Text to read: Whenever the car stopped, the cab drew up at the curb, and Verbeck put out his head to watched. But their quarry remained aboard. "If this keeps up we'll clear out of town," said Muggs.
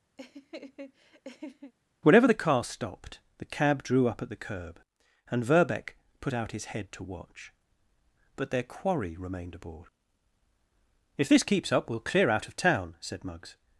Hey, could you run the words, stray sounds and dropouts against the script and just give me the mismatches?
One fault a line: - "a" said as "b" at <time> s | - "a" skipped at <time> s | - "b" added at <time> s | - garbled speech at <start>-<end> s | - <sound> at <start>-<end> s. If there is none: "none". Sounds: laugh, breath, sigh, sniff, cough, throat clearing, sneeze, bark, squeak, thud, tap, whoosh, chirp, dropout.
- laugh at 0.2-1.7 s
- "watched" said as "watch" at 7.0 s